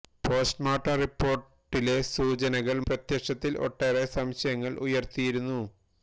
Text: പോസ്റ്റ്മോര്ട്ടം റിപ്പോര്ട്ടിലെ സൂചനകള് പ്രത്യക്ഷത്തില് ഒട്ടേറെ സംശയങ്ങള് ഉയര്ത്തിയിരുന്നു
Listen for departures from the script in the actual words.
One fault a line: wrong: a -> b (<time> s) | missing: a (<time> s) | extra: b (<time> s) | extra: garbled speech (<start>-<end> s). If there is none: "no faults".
no faults